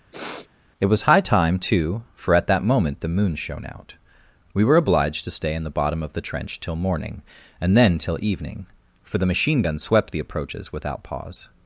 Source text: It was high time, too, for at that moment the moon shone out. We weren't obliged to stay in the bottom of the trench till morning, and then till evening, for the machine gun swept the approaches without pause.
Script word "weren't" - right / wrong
wrong